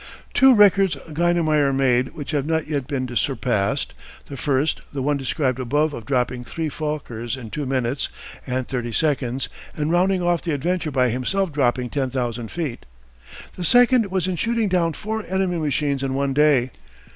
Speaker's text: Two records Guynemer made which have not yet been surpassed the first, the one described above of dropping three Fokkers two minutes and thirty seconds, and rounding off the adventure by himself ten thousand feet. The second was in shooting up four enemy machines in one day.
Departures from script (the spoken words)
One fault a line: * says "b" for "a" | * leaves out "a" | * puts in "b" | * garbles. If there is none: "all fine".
* puts in "in"
* puts in "dropping"
* says "down" for "up"